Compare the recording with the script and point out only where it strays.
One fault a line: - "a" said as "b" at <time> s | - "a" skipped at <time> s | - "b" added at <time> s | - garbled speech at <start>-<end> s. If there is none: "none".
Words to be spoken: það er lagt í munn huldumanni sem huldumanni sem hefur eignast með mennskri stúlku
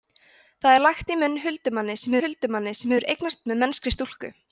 none